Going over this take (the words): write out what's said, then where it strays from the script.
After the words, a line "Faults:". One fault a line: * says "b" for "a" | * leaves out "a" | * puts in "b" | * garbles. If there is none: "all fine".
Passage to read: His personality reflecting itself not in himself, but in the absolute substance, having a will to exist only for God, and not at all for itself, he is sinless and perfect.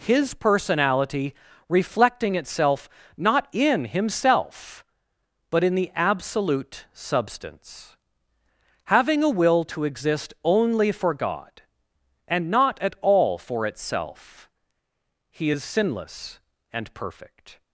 His personality reflecting itself not in himself, but in the absolute substance, having a will to exist only for God, and not at all for itself, he is sinless and perfect.
Faults:
all fine